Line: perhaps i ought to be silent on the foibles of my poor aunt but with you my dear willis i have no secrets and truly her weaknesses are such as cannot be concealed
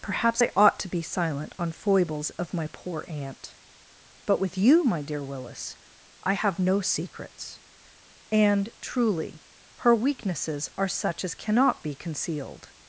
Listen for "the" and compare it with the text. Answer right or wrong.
wrong